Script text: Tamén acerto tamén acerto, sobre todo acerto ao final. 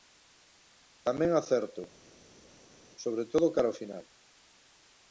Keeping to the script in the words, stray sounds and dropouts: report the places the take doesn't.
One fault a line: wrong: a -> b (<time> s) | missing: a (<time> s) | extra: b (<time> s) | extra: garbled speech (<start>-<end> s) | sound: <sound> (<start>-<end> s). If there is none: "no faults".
missing: tamén acerto (1.8 s)
wrong: acerto -> cara (3.6 s)